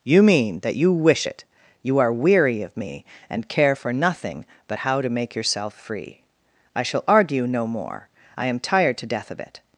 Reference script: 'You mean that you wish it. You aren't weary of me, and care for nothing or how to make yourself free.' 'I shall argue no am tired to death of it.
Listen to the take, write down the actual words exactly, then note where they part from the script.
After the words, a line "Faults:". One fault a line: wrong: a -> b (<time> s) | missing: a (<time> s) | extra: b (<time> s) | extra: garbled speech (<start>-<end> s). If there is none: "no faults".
'You mean that you wish it. You are weary of me, and care for nothing but how to make yourself free.' 'I shall argue no more. I am tired to death of it.
Faults:
wrong: aren't -> are (2.0 s)
wrong: or -> but (4.7 s)
extra: more I (7.7 s)